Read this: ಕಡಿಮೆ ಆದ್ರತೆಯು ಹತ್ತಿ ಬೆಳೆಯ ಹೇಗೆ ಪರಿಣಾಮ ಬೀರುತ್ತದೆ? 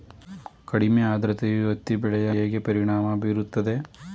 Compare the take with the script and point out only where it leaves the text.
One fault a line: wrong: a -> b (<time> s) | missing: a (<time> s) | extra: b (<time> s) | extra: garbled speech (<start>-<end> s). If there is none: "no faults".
no faults